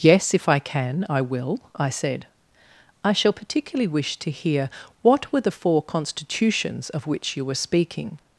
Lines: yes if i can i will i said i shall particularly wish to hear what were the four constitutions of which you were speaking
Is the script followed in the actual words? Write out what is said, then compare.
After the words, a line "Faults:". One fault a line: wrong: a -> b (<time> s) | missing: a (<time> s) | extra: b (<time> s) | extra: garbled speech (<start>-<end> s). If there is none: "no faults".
yes if i can i will i said i shall particularly wish to hear what were the four constitutions of which you were speaking
Faults:
no faults